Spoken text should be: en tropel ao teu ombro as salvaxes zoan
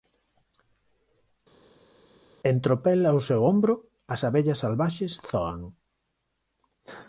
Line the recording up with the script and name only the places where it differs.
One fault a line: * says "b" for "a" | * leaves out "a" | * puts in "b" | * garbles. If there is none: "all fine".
* says "seu" for "teu"
* puts in "abellas"